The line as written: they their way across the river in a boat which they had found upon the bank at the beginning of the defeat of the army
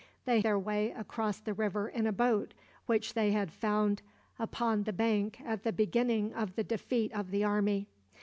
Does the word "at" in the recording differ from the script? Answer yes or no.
no